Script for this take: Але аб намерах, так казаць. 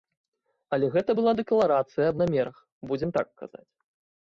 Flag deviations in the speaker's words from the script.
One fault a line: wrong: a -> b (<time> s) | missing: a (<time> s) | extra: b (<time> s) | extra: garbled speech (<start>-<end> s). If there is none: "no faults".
extra: гэта была дэкларацыя (0.9 s)
extra: будзем (2.9 s)